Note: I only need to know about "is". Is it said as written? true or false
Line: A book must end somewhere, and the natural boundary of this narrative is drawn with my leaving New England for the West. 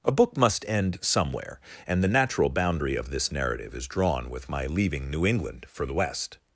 true